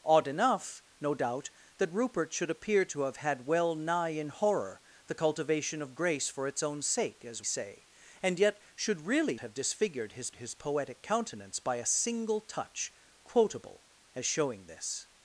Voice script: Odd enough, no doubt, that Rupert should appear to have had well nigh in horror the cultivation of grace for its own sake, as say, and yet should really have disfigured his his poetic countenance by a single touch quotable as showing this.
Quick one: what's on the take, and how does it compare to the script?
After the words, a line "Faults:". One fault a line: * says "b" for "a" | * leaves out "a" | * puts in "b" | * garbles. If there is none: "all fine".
Odd enough, no doubt, that Rupert should appear to have had well nigh in horror the cultivation of grace for its own sake, as say, and yet should really have disfigured his his poetic countenance by a single touch quotable as showing this.
Faults:
all fine